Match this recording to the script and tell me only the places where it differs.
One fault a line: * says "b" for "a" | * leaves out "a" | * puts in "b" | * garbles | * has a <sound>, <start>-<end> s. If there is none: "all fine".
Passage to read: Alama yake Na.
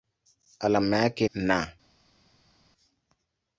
all fine